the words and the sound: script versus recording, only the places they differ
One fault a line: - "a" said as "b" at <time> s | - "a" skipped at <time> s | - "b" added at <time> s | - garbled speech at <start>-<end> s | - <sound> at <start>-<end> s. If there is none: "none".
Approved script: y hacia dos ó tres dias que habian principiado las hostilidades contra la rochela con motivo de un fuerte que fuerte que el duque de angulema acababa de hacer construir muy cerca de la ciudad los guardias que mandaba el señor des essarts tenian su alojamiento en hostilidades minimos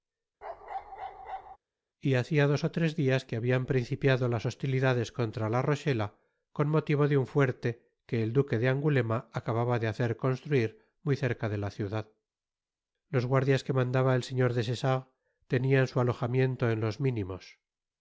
- bark at 0.4-1.6 s
- "fuerte que" skipped at 8.2 s
- "hostilidades" said as "los" at 16.8 s